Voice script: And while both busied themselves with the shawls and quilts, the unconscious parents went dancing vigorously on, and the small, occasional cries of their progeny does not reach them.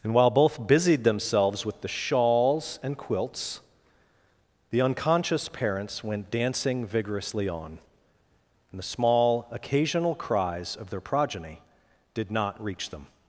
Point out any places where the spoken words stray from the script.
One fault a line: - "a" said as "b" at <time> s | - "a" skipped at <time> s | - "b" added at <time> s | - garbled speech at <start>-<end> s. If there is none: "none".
- "does" said as "did" at 12.1 s